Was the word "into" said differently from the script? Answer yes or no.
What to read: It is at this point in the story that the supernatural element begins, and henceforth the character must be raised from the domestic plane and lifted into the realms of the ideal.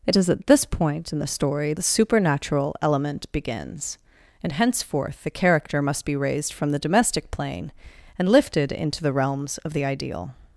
no